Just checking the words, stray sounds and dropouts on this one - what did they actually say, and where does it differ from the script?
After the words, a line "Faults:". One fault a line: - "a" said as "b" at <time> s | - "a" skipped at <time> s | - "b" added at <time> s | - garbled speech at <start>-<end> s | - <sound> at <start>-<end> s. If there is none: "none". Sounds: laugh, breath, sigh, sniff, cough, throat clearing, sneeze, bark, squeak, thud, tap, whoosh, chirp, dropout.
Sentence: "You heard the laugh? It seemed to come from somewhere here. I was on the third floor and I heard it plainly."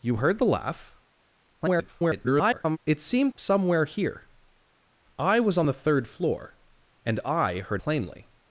"You heard the laugh? [garbled] It seemed somewhere here. I was on the third floor and I heard plainly."
Faults:
- garbled speech at 1.6-2.8 s
- "to come from" skipped at 3.3 s
- "it" skipped at 7.8 s